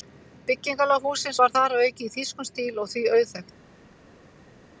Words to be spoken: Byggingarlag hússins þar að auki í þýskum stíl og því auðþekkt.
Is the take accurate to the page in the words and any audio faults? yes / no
no